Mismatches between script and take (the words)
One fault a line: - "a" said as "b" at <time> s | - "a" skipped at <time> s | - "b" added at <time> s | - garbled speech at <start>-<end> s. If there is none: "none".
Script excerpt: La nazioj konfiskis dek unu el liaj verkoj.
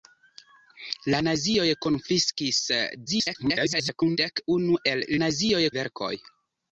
- garbled speech at 3.1-4.2 s
- "liaj" said as "nazioj" at 5.2 s